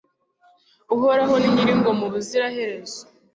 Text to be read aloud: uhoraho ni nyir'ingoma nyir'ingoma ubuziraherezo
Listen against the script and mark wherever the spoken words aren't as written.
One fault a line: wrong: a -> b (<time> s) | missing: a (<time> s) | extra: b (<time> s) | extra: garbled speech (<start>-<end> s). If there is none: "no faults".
missing: nyir'ingoma (2.0 s)